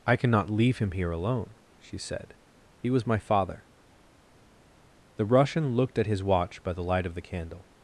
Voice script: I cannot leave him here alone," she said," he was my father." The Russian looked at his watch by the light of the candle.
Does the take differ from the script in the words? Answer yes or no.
no